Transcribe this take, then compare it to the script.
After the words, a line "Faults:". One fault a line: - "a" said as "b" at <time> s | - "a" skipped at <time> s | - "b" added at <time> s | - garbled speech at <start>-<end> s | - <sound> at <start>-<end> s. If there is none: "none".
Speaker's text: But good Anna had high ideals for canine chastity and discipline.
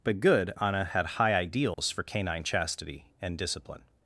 But good Anna had high ideals for canine chastity and discipline.
Faults:
- dropout at 1.7-1.8 s